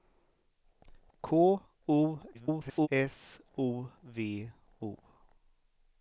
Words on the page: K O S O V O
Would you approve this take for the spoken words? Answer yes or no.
no